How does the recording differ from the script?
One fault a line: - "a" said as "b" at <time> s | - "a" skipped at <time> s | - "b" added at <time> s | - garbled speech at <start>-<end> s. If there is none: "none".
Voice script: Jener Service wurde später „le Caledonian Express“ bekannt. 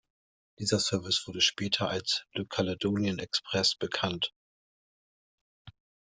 - "Jener" said as "Dieser" at 0.6 s
- "als" added at 1.9 s